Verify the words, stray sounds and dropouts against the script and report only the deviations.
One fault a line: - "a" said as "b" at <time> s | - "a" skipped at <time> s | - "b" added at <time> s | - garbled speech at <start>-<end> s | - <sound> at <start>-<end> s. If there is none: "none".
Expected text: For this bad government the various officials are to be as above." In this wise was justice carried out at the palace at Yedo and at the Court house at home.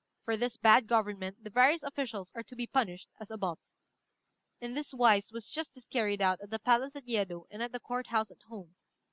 - "punished" added at 2.7 s